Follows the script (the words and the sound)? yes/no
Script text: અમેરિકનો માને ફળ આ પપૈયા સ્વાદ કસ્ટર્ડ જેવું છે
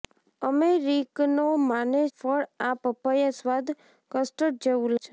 yes